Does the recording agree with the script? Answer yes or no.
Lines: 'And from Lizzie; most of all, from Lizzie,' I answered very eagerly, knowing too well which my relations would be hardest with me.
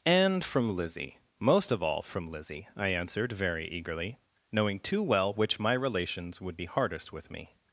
yes